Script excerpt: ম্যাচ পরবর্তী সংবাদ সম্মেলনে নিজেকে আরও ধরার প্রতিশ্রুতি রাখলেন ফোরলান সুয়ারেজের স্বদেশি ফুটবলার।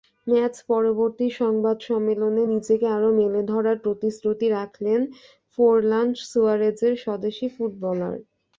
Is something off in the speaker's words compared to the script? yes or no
yes